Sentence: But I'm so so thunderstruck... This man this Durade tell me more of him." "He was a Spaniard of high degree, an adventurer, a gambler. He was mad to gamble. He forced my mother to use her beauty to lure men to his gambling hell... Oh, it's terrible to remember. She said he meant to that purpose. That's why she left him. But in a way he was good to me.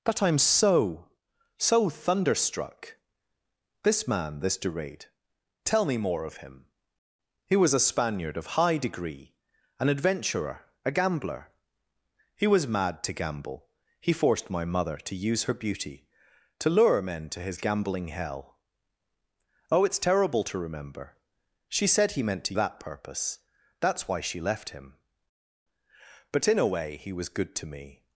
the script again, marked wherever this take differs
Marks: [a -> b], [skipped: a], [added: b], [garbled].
But I'm so so thunderstruck... This man this Durade tell me more of him." "He was a Spaniard of high degree, an adventurer, a gambler. He was mad to gamble. He forced my mother to use her beauty to lure men to his gambling hell... Oh, it's terrible to remember. She said he meant to that purpose. That's why she left him. But in a way he was good to me.